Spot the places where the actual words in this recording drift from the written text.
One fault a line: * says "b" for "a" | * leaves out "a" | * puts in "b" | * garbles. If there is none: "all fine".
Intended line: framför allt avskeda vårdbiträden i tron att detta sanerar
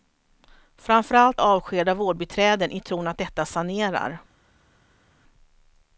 all fine